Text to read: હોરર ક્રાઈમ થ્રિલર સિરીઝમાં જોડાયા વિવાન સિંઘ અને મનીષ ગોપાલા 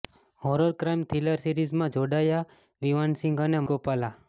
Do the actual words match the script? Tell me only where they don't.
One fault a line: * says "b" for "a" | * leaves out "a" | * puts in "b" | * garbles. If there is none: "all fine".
* leaves out "મનીષ"